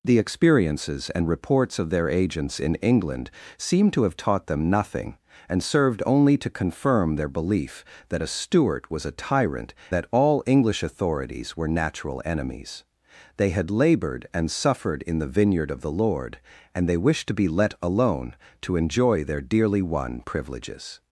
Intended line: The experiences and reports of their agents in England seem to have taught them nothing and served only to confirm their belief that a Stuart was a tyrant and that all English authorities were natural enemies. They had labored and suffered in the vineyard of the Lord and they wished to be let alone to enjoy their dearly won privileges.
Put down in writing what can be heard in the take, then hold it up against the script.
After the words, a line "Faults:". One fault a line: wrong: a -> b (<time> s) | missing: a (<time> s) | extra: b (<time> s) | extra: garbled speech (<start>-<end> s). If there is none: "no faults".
The experiences and reports of their agents in England seem to have taught them nothing and served only to confirm their belief that a Stuart was a tyrant that all English authorities were natural enemies. They had labored and suffered in the vineyard of the Lord and they wished to be let alone to enjoy their dearly won privileges.
Faults:
missing: and (9.8 s)